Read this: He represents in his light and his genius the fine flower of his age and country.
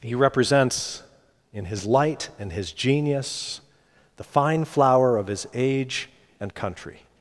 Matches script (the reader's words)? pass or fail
pass